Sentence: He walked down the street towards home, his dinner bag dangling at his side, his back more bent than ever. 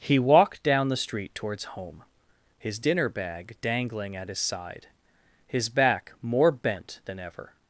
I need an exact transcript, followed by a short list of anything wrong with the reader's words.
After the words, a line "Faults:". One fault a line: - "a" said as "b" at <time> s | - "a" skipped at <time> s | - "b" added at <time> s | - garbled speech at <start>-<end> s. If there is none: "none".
He walked down the street towards home, his dinner bag dangling at his side, his back more bent than ever.
Faults:
none